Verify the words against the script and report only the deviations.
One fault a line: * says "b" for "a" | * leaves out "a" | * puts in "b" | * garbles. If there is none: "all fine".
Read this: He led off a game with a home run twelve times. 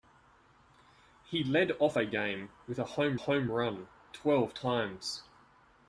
* puts in "home"